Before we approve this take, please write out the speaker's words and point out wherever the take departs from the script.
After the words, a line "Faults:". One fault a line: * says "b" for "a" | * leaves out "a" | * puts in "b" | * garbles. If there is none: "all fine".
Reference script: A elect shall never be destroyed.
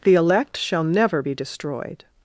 The elect shall never be destroyed.
Faults:
* says "The" for "A"